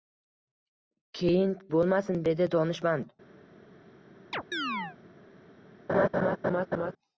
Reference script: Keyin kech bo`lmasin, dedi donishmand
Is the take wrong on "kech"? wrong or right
wrong